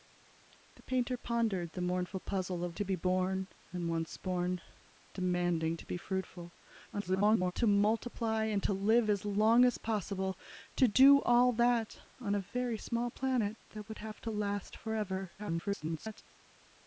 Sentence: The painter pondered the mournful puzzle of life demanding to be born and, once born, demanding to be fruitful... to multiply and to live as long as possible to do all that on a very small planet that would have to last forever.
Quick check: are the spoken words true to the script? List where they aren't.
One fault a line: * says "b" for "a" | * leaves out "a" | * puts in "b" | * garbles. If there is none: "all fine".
* leaves out "life demanding"
* garbles
* garbles